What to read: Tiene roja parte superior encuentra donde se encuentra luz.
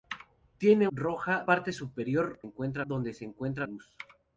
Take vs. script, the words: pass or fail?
pass